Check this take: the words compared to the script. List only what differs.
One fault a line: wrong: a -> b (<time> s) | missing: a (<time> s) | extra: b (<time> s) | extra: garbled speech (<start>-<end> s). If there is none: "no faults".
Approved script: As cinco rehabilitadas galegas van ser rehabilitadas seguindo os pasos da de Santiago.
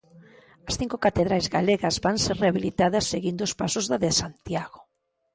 wrong: rehabilitadas -> catedrais (1.1 s)